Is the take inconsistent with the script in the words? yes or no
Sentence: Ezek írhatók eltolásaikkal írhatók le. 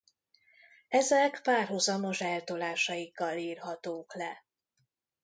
yes